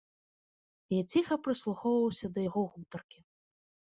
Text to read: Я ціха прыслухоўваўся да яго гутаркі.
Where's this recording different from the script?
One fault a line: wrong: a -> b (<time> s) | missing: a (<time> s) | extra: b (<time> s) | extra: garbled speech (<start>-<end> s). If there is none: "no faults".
no faults